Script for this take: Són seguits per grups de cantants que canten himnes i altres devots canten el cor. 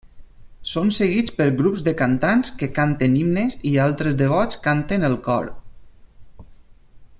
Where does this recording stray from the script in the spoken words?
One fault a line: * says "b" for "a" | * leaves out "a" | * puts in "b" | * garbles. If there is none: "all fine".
all fine